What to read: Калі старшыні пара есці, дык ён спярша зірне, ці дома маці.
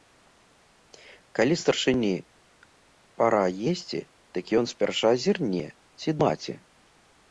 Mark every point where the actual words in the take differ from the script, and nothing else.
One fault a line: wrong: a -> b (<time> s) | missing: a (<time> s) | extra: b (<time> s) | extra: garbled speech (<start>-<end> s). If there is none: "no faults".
missing: дома (6.1 s)